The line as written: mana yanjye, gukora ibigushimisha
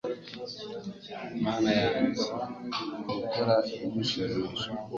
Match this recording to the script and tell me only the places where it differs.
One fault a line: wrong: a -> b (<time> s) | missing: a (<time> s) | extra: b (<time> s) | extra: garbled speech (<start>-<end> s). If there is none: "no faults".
no faults